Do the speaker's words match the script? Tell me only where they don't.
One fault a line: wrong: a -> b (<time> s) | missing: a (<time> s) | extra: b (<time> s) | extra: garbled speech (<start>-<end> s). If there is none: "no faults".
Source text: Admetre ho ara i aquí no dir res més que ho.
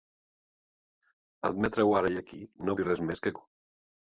no faults